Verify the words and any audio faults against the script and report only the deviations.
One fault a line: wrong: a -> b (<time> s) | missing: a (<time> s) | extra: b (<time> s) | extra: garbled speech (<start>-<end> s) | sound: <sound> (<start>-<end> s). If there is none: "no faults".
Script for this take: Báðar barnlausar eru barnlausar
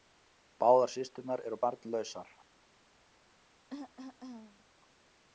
wrong: barnlausar -> systurnar (0.9 s)
sound: cough (3.7-4.6 s)